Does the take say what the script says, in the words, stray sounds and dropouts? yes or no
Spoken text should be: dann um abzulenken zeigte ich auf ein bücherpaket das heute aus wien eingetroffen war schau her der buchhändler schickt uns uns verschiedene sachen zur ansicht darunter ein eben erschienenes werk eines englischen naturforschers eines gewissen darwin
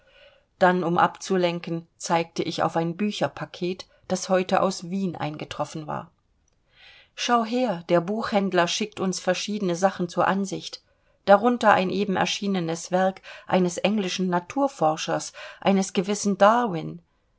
no